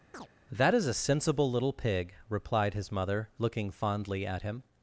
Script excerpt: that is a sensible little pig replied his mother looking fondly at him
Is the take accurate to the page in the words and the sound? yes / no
no